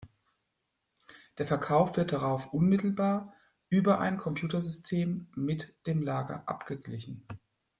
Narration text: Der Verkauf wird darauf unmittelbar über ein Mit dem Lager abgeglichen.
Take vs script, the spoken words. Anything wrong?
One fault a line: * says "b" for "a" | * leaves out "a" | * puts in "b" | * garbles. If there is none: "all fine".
* puts in "Computersystem"